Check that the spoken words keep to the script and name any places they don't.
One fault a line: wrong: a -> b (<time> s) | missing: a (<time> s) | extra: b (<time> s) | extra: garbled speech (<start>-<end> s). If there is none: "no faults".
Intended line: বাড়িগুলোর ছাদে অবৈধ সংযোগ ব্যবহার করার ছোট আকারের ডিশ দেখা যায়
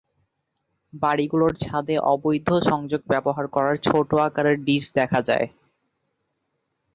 no faults